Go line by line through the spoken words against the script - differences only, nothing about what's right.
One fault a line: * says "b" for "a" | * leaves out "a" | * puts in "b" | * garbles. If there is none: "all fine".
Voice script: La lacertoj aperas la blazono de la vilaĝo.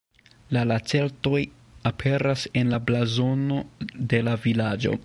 * puts in "en"